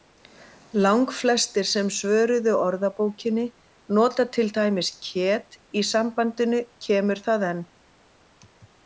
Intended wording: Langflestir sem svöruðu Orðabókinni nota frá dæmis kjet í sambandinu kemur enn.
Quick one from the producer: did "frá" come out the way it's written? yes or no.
no